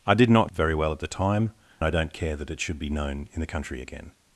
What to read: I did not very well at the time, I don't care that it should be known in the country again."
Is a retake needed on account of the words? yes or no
no